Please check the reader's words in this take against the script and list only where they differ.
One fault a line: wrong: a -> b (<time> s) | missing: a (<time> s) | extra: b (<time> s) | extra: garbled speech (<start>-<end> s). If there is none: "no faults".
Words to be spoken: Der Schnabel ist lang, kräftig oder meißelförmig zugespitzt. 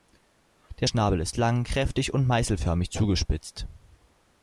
wrong: oder -> und (2.1 s)